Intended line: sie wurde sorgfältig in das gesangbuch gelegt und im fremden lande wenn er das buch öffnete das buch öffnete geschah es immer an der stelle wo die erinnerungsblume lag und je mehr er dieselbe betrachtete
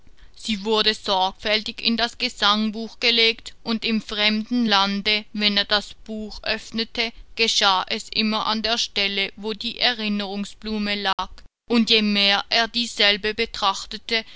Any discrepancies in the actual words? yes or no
yes